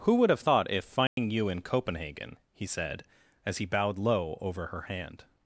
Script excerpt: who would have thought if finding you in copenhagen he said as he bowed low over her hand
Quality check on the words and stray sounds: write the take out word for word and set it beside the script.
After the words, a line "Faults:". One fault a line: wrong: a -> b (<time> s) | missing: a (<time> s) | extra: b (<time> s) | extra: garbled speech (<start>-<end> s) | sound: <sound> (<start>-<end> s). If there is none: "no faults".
who would have thought if finding you in copenhagen he said as he bowed low over her hand
Faults:
sound: dropout (1.1-1.2 s)